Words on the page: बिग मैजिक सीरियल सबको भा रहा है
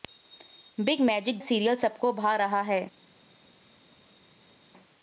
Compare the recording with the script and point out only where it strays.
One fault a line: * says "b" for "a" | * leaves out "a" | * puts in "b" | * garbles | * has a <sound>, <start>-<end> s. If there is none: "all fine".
all fine